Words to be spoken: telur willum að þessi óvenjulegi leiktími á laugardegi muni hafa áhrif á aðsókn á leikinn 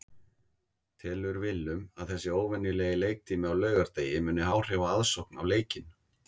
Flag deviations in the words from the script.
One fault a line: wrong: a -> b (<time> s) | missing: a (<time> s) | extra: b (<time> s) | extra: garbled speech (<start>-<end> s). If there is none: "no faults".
missing: hafa (4.5 s)